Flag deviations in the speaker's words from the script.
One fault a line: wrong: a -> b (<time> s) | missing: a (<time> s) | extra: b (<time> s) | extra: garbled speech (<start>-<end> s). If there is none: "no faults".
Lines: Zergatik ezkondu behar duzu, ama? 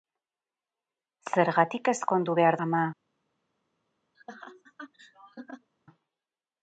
missing: duzu (2.6 s)